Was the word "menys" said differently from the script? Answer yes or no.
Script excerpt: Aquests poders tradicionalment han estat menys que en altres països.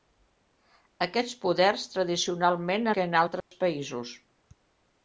yes